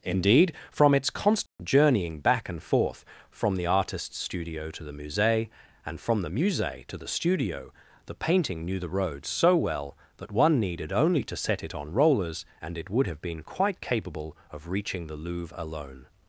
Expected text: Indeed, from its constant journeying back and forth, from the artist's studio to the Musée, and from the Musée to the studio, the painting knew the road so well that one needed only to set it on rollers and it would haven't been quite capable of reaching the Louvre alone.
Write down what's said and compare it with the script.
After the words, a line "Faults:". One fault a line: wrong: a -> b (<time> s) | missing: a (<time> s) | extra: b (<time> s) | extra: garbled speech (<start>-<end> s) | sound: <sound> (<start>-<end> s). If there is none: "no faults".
Indeed, from its constant journeying back and forth, from the artist's studio to the Musée, and from the Musée to the studio, the painting knew the road so well that one needed only to set it on rollers and it would have been quite capable of reaching the Louvre alone.
Faults:
sound: dropout (1.5-1.6 s)
wrong: haven't -> have (13.1 s)